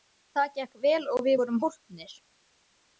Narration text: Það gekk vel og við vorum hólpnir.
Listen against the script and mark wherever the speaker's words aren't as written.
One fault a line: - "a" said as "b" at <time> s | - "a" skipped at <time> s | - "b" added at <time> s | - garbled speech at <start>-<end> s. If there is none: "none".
none